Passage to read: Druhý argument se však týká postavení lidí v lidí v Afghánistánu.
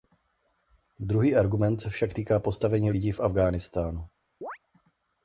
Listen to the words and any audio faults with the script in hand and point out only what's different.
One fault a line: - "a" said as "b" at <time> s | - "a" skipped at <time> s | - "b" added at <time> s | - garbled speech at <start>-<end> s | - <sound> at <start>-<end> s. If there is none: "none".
- "lidí v" skipped at 3.2 s
- chirp at 4.4-4.6 s